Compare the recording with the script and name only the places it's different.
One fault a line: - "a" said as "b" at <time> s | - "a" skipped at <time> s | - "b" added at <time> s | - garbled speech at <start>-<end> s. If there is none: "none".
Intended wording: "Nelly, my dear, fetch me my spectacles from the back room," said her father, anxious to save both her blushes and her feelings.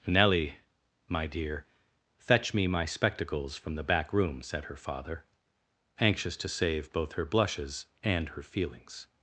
none